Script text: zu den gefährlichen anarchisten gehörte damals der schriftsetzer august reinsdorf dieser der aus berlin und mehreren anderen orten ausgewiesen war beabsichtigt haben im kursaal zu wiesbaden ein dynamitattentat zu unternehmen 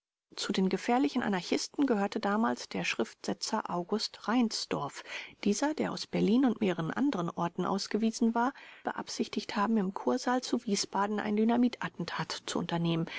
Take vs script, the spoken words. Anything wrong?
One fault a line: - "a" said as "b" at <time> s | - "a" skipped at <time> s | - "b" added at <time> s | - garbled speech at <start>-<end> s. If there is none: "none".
none